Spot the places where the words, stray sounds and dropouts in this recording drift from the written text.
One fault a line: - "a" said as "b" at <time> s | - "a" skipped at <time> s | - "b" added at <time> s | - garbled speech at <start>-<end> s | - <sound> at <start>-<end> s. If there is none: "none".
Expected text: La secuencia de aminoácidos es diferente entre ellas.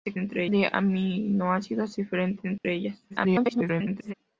- "secuencia" said as "entre" at 0.2 s
- "es" skipped at 2.0 s
- dropout at 2.6-2.6 s
- garbled speech at 3.1-4.1 s